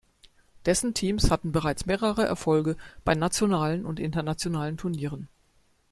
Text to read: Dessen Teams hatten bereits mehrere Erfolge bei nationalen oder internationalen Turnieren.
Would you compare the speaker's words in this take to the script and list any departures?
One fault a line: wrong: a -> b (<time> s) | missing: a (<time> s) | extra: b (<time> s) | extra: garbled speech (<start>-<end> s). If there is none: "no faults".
wrong: oder -> und (3.8 s)